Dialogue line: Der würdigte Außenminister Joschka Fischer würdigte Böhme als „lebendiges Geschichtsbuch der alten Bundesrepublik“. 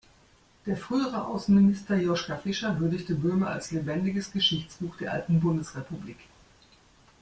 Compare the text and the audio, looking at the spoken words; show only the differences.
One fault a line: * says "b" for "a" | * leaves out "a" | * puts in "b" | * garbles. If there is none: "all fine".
* says "frühere" for "würdigte"